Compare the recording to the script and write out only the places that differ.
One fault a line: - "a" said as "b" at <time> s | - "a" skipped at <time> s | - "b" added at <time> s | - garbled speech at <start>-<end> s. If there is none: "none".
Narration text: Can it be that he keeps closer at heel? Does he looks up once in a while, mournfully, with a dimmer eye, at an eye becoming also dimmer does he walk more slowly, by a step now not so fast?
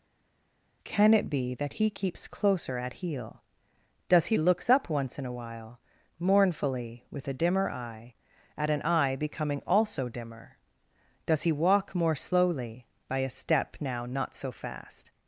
none